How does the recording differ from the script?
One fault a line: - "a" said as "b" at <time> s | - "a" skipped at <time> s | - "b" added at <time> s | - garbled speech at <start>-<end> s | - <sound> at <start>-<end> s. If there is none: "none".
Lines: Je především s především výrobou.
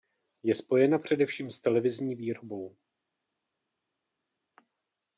- "spojena" added at 0.6 s
- "především" said as "televizní" at 1.6 s